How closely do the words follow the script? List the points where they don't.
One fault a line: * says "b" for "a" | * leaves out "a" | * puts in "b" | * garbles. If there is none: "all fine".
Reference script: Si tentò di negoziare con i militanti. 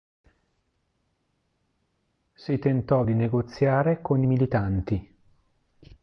all fine